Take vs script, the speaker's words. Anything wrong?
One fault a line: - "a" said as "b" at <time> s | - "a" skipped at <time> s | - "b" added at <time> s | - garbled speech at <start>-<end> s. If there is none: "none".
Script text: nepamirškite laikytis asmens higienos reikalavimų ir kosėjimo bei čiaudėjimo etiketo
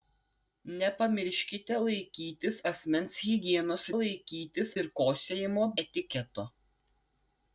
- "reikalavimų" said as "laikytis" at 4.0 s
- "bei čiaudėjimo" skipped at 5.7 s